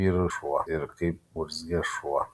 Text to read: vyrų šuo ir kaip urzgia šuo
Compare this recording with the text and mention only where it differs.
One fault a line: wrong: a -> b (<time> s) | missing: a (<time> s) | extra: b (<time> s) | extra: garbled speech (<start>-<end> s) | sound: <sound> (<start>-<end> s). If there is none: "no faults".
no faults